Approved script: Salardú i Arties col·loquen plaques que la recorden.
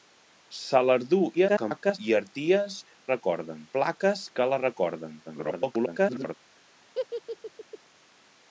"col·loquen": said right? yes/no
no